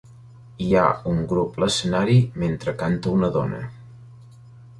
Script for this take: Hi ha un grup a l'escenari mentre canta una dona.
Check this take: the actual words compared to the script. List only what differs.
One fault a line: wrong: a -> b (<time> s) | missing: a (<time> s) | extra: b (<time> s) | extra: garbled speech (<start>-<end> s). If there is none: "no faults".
no faults